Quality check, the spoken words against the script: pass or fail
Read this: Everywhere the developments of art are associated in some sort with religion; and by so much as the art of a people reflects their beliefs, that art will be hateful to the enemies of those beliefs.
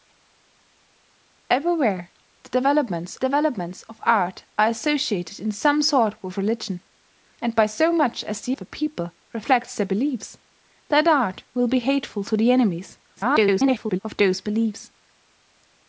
fail